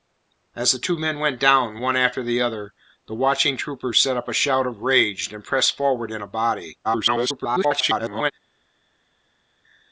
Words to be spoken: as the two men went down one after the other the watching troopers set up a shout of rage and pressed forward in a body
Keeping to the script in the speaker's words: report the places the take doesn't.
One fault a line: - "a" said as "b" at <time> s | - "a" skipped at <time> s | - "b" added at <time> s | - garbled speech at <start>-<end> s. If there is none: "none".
- garbled speech at 6.8-8.3 s